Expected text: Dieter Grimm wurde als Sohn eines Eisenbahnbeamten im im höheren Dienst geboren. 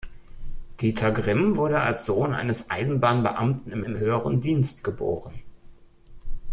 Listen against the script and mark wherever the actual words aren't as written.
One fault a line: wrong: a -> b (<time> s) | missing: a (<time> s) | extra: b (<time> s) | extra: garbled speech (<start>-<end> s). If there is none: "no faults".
no faults